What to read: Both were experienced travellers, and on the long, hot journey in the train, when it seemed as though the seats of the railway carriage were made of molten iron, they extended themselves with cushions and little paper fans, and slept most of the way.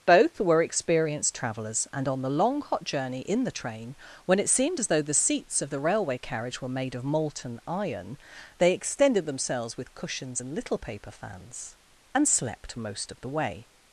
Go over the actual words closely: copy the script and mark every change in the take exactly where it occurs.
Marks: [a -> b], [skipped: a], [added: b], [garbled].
Both were experienced travellers, and on the long, hot journey in the train, when it seemed as though the seats of the railway carriage were made of molten iron, they extended themselves with cushions and little paper fans, and slept most of the way.